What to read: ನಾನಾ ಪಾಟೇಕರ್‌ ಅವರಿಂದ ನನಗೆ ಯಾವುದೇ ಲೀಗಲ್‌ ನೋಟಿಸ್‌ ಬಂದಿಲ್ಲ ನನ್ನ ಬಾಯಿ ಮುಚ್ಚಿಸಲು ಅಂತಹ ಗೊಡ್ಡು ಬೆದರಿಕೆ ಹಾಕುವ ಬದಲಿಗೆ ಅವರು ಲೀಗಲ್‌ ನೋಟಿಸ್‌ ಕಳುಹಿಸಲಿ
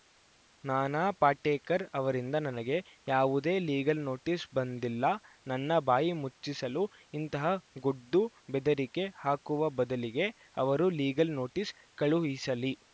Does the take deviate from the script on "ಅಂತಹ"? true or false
true